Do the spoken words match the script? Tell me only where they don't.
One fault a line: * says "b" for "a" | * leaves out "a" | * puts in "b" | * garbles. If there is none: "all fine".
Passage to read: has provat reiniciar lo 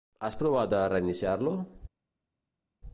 * puts in "de"